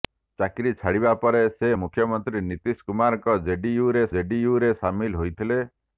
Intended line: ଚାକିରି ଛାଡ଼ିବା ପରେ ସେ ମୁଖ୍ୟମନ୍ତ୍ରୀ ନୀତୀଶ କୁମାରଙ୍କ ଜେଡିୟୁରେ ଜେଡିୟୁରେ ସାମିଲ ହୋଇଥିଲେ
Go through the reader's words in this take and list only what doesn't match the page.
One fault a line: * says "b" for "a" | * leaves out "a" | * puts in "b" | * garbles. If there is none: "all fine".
all fine